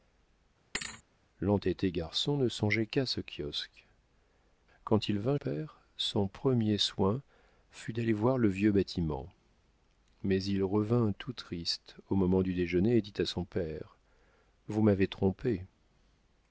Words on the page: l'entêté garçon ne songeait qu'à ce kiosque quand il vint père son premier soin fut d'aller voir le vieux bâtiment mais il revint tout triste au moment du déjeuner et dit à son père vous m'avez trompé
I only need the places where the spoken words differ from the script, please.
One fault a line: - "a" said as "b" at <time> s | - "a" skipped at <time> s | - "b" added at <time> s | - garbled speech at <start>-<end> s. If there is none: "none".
none